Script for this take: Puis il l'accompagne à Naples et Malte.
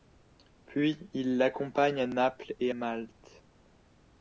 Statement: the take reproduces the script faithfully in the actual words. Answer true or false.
true